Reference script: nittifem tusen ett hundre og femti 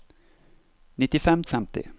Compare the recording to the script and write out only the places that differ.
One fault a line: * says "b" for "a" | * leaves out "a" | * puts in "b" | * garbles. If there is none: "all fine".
* leaves out "tusen ett hundre"